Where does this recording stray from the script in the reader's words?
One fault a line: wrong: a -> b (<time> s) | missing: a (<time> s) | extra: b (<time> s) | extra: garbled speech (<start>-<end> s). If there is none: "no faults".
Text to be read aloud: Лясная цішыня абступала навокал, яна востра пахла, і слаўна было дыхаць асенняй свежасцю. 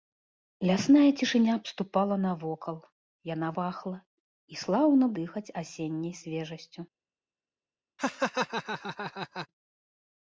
missing: востра (3.5 s)
missing: было (5.1 s)